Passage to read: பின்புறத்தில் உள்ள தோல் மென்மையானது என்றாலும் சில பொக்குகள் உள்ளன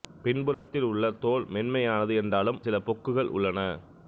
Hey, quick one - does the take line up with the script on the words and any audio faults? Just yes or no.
no